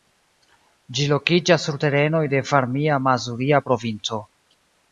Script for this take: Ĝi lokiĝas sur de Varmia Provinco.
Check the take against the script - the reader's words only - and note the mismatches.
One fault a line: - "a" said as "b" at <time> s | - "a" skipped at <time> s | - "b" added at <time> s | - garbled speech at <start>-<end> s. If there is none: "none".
- "terenoj" added at 1.8 s
- "Mazuria" added at 3.1 s